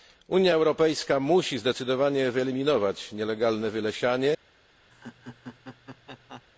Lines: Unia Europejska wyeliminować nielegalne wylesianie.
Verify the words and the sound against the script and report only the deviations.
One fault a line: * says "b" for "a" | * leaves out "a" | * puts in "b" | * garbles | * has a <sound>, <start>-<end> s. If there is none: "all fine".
* puts in "musi zdecydowanie"
* has a laugh, 4.9-6.4 s